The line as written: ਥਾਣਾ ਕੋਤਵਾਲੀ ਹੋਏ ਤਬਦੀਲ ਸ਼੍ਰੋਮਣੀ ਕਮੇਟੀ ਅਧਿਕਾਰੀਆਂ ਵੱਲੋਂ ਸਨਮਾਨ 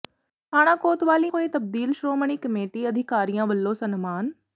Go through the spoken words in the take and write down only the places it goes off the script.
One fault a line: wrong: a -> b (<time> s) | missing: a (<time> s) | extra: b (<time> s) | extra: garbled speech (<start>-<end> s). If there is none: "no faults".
no faults